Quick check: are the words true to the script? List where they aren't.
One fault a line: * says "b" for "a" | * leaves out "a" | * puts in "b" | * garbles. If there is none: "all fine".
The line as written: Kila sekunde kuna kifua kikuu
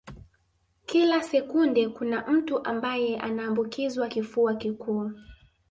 * puts in "mtu ambaye anaambukizwa"